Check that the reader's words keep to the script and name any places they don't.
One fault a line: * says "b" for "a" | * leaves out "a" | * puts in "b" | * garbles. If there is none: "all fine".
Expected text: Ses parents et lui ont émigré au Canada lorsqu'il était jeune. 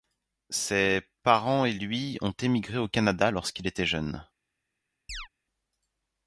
all fine